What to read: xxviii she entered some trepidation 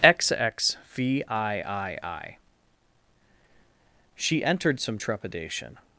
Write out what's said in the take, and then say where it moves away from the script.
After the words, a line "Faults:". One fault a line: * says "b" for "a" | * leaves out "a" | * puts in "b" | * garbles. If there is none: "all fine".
xxviii she entered some trepidation
Faults:
all fine